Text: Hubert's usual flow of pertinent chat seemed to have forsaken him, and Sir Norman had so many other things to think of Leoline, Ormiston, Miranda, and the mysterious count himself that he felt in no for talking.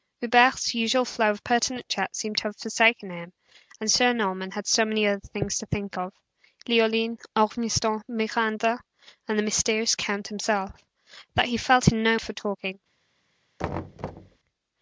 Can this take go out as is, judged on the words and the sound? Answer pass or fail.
fail